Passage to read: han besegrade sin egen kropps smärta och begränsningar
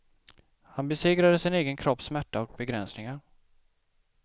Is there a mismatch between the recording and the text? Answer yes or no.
no